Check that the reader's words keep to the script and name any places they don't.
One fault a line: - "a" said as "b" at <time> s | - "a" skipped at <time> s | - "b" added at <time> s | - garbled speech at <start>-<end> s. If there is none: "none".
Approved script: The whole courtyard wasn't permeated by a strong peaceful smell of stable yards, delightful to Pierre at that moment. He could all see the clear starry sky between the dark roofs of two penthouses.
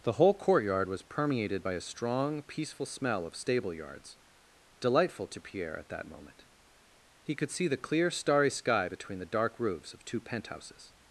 - "wasn't" said as "was" at 0.9 s
- "all" skipped at 7.5 s